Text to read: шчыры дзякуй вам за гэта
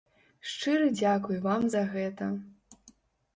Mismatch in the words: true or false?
false